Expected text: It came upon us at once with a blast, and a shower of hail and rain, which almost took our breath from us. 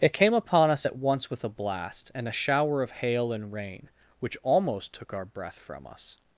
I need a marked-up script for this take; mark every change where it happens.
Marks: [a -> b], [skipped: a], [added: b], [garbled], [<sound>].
It came upon us at once with a blast, and a shower of hail and rain, which almost took our breath from us.